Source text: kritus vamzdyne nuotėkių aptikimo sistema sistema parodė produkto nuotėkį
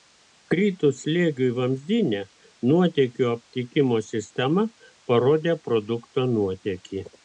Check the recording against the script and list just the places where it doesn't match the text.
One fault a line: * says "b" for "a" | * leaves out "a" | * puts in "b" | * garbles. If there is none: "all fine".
* puts in "slėgiui"
* leaves out "sistema"